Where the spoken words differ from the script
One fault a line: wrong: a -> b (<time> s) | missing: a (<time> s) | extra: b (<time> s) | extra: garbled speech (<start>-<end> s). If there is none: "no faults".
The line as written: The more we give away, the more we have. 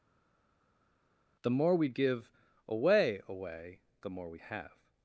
extra: away (3.3 s)